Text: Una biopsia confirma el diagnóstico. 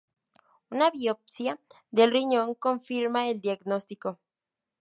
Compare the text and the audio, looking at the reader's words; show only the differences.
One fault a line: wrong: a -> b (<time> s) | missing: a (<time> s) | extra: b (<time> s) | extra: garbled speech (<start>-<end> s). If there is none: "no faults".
extra: del riñón (1.9 s)